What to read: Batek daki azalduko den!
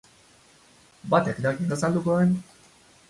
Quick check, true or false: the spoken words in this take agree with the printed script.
true